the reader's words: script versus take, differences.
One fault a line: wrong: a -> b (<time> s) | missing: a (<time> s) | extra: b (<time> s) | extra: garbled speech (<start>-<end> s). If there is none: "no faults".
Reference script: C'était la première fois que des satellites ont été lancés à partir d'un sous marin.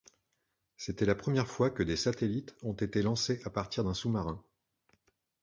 no faults